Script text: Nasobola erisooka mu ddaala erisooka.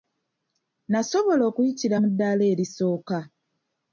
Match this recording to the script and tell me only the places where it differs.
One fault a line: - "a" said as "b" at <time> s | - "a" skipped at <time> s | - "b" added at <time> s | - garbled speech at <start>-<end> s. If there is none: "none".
- "erisooka" said as "okuyitira" at 1.5 s